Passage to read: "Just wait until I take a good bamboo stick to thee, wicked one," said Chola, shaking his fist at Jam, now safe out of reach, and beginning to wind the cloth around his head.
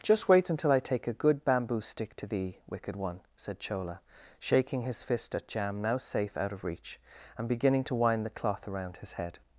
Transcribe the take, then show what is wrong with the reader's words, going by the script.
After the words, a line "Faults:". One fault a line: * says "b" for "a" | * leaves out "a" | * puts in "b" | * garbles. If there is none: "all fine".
"Just wait until I take a good bamboo stick to thee, wicked one," said Chola, shaking his fist at Jam, now safe out of reach, and beginning to wind the cloth around his head.
Faults:
all fine